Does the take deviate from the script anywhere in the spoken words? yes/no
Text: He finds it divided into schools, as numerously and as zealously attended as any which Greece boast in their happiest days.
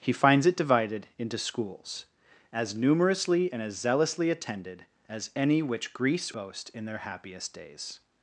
no